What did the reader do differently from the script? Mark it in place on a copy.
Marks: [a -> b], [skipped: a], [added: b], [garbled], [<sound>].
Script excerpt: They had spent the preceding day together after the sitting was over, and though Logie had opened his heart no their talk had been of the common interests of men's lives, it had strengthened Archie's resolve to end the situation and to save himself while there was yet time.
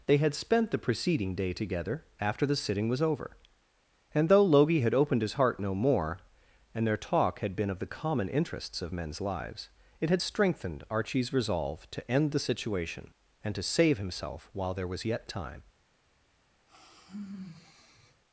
They had spent the preceding day together after the sitting was over, and though Logie had opened his heart no [added: more and] their talk had been of the common interests of men's lives, it had strengthened Archie's resolve to end the situation and to save himself while there was yet time. [sigh]